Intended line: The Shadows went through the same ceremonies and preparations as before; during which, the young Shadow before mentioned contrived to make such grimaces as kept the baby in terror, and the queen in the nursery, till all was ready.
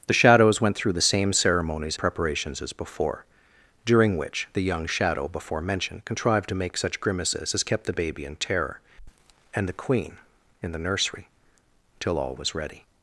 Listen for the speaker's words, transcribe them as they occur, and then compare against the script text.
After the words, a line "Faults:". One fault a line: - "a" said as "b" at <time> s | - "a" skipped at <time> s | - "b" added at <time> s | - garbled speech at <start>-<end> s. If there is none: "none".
The Shadows went through the same ceremonies preparations as before; during which, the young Shadow before mentioned contrived to make such grimaces as kept the baby in terror, and the queen in the nursery, till all was ready.
Faults:
- "and" skipped at 2.0 s